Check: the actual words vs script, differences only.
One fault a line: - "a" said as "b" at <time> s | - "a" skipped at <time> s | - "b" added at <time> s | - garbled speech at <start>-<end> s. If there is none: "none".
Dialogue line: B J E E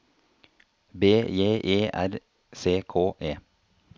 - "R C K" added at 1.9 s